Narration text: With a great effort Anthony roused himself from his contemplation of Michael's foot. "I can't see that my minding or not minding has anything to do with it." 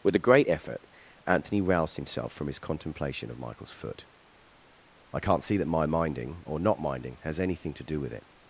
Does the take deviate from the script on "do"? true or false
false